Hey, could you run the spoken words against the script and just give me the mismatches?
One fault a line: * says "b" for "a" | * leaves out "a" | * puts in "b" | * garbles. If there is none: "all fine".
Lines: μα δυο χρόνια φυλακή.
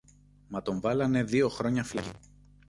* puts in "τον βάλανε"